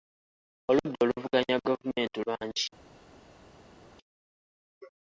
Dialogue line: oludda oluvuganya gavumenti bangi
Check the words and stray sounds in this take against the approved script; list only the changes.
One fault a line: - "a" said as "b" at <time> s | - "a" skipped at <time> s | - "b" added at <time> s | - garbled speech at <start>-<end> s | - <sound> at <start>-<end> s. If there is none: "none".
none